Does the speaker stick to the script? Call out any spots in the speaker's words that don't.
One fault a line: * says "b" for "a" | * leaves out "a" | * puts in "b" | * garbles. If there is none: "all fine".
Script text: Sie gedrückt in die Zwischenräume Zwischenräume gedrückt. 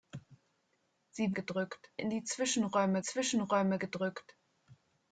all fine